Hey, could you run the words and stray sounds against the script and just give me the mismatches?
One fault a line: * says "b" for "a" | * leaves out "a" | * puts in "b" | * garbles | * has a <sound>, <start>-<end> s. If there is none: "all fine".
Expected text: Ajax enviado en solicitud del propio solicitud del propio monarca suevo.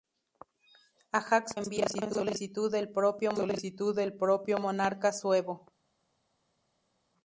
all fine